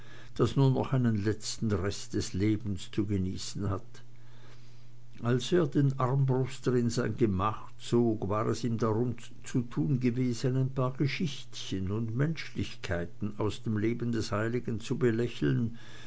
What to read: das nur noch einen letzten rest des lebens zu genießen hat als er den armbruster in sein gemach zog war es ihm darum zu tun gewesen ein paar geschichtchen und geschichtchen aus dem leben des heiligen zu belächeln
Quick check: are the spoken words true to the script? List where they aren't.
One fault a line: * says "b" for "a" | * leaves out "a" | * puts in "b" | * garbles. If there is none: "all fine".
* says "menschlichkeiten" for "geschichtchen"